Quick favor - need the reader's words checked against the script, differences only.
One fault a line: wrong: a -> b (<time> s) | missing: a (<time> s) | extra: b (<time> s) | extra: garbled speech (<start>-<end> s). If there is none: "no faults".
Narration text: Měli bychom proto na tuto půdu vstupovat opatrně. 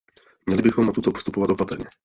missing: proto (0.9 s)
missing: půdu (1.1 s)